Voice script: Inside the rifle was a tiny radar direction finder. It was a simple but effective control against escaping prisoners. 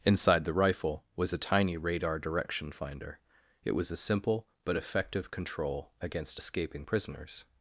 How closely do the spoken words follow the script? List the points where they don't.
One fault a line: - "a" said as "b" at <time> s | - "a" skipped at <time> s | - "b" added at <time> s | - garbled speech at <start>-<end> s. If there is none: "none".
none